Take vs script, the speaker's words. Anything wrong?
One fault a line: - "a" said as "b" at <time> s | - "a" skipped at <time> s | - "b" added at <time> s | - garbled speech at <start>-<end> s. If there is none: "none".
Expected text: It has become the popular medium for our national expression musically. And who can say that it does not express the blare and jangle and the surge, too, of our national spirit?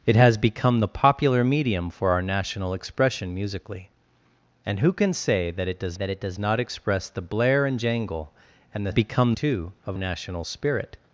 - "that it does" added at 5.9 s
- "surge" said as "become" at 8.9 s
- "our" skipped at 10.0 s